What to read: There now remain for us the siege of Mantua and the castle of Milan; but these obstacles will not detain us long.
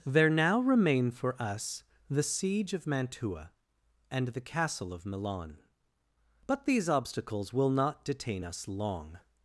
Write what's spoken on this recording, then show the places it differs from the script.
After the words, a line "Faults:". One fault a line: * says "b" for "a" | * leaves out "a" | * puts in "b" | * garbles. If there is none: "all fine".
There now remain for us the siege of Mantua and the castle of Milan; but these obstacles will not detain us long.
Faults:
all fine